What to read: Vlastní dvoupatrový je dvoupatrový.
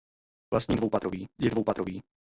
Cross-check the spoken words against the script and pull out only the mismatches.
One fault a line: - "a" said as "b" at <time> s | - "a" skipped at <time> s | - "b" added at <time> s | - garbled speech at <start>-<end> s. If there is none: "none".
none